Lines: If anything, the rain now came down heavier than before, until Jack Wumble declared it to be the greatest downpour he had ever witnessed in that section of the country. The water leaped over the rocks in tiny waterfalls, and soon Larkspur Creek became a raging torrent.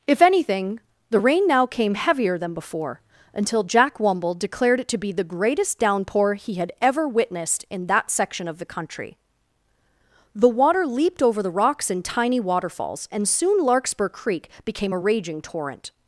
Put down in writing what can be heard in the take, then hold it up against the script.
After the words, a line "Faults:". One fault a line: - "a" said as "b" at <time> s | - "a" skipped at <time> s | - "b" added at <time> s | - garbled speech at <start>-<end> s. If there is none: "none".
If anything, the rain now came heavier than before, until Jack Wumble declared it to be the greatest downpour he had ever witnessed in that section of the country. The water leaped over the rocks in tiny waterfalls, and soon Larkspur Creek became a raging torrent.
Faults:
- "down" skipped at 1.9 s